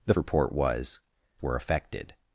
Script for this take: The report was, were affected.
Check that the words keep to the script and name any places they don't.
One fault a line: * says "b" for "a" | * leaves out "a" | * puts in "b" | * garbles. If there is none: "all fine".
all fine